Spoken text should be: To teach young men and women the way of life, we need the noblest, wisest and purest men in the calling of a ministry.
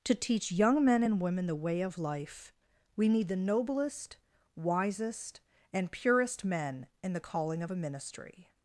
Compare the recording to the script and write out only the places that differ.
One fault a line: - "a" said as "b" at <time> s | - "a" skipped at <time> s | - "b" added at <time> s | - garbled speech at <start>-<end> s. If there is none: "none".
none